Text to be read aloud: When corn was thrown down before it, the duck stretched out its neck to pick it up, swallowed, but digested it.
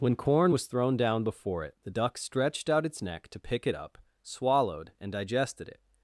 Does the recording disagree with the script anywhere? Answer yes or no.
yes